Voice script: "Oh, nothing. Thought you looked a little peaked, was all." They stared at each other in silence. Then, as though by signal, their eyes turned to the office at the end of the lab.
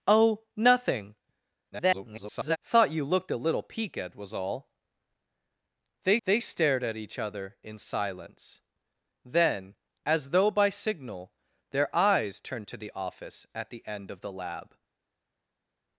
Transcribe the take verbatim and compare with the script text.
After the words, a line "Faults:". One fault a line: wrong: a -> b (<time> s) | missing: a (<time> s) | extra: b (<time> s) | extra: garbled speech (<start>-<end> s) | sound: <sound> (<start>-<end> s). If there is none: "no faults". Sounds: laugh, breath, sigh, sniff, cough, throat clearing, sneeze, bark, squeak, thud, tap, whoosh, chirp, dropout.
"Oh, nothing. [garbled] Thought you looked a little peaked, was all." They they stared at each other in silence. Then, as though by signal, their eyes turned to the office at the end of the lab.
Faults:
extra: garbled speech (1.7-2.6 s)
extra: they (6.2 s)